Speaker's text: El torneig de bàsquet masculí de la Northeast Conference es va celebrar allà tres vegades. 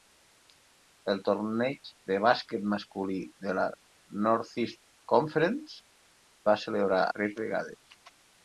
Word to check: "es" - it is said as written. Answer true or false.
false